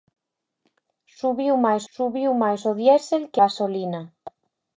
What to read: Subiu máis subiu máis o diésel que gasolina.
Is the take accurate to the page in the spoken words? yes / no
yes